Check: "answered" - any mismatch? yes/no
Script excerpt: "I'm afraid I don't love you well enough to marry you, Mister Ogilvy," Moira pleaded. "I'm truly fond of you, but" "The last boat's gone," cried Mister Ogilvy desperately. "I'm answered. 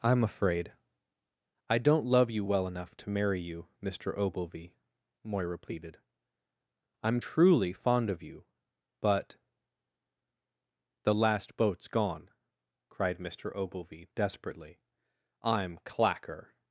yes